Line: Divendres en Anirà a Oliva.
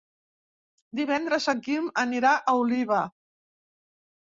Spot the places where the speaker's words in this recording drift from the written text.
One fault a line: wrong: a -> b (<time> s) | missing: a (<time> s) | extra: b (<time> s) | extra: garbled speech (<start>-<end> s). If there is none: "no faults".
extra: Quim (1.6 s)